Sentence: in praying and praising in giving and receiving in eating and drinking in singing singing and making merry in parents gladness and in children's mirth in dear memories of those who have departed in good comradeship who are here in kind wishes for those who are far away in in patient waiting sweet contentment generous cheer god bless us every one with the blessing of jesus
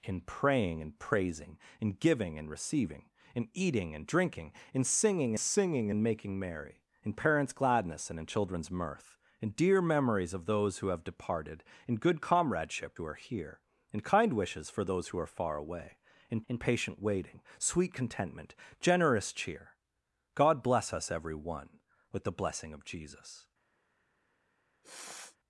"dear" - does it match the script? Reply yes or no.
yes